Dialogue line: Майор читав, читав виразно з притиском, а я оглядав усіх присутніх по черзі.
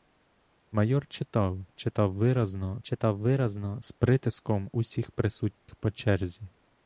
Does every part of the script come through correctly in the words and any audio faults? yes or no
no